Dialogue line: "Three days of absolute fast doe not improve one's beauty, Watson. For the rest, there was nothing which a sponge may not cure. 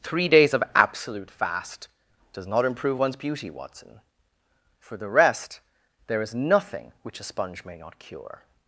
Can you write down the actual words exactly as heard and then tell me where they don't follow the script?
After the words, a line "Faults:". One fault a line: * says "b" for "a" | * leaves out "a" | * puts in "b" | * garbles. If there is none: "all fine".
"Three days of absolute fast does not improve one's beauty, Watson. For the rest, there is nothing which a sponge may not cure.
Faults:
* says "does" for "doe"
* says "is" for "was"